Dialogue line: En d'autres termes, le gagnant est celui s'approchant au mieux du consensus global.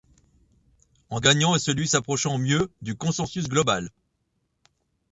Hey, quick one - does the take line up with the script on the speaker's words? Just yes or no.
no